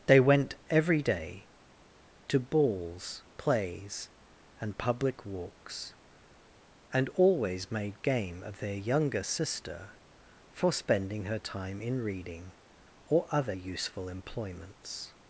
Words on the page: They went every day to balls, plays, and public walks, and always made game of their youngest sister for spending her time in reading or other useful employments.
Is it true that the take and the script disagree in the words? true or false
true